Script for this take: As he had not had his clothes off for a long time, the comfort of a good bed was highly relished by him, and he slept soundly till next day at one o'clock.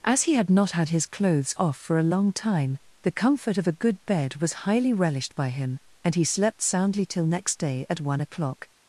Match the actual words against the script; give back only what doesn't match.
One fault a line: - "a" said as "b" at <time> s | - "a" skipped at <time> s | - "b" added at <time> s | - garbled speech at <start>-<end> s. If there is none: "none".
none